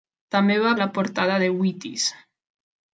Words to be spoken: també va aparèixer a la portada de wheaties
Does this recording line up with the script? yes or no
no